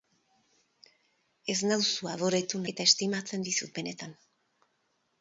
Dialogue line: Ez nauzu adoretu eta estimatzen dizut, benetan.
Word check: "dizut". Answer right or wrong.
right